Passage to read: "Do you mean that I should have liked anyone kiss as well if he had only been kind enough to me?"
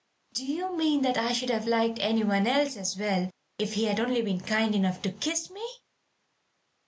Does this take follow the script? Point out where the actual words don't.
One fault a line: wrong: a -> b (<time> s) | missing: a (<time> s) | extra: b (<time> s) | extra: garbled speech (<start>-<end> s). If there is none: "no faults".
wrong: kiss -> else (2.5 s)
extra: kiss (5.1 s)